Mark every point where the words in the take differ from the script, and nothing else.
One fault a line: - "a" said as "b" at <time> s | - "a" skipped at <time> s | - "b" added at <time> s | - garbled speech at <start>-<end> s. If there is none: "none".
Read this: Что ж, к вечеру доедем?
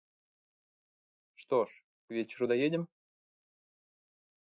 none